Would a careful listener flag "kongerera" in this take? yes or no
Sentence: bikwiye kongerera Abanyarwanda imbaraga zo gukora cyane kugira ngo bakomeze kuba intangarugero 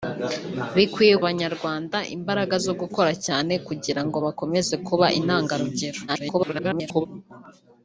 yes